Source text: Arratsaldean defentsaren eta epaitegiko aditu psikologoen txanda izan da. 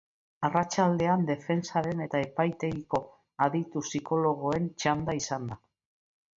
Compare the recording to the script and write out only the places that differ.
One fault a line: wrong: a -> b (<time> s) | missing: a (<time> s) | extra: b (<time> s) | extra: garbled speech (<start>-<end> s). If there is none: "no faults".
no faults